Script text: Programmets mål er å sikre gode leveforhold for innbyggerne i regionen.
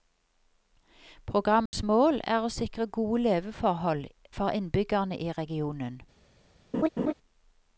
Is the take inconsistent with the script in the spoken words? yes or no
no